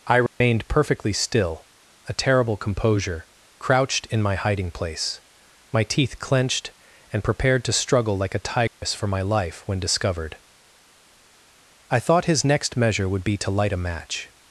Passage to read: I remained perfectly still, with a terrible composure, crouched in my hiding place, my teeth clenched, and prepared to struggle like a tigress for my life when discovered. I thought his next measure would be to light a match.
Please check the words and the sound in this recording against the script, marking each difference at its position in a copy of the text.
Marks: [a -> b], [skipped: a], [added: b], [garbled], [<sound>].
I remained [dropout] perfectly still, [skipped: with] a terrible composure, crouched in my hiding place, my teeth clenched, and prepared to struggle like a tigress [dropout] for my life when discovered. I thought his next measure would be to light a match.